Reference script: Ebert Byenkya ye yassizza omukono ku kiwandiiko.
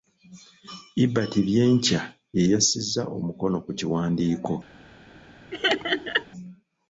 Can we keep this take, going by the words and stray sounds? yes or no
no